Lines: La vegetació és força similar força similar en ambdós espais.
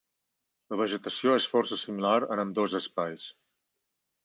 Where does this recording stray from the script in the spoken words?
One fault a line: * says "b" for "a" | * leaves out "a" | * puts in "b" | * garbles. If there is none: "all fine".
* leaves out "força similar"